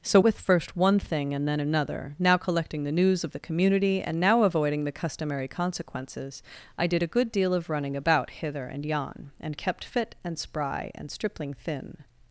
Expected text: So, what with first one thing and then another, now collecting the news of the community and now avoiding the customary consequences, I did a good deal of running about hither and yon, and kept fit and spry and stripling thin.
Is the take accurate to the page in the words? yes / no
no